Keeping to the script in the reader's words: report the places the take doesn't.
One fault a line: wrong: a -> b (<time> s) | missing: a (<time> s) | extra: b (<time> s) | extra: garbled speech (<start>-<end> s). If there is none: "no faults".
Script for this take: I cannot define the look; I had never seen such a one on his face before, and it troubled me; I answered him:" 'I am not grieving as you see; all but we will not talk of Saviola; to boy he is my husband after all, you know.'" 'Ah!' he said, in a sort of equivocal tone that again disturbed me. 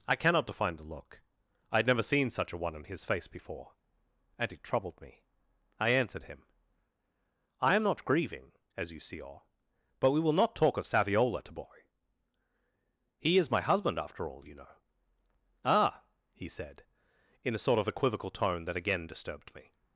no faults